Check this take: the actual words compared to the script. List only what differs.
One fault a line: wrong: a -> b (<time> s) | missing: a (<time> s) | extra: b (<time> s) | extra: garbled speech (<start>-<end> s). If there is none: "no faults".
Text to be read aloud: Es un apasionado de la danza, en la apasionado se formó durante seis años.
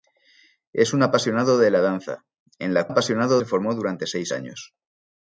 no faults